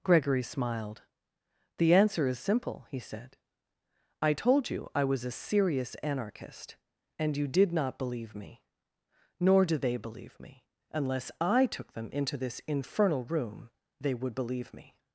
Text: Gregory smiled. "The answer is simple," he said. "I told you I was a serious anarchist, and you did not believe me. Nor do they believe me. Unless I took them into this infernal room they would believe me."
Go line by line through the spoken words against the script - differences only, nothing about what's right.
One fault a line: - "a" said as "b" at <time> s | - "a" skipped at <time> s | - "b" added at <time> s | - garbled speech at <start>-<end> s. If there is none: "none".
none